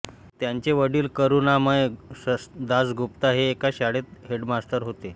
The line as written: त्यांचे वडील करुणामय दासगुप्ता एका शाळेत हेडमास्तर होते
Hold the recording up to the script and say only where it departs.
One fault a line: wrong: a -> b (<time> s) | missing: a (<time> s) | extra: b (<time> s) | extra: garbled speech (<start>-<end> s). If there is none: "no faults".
extra: हे (3.3 s)